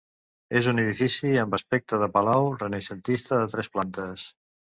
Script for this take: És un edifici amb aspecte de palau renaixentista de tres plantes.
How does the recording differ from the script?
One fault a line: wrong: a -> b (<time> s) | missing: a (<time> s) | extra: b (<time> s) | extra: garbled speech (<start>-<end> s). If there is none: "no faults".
no faults